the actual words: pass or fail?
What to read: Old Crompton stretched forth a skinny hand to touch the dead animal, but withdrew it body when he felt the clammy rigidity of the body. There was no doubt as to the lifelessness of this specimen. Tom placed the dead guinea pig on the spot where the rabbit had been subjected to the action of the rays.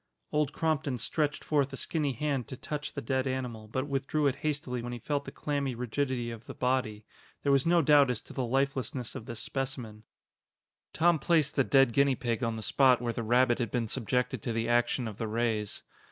fail